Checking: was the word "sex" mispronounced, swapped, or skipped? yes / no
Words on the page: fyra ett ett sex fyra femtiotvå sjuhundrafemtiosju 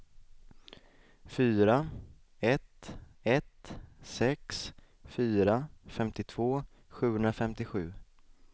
no